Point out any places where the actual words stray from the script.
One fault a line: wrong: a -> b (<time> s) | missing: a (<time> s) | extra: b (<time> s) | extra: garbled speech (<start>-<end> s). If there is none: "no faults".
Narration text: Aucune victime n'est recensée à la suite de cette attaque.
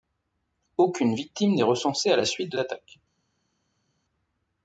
missing: cette (2.6 s)